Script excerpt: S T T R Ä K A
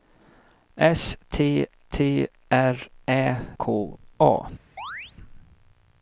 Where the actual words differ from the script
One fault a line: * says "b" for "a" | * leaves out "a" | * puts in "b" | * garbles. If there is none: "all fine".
all fine